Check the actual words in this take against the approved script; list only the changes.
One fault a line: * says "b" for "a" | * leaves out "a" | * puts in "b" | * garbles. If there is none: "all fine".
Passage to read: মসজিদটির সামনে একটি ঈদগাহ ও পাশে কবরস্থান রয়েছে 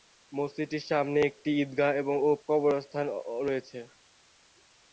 * leaves out "পাশে"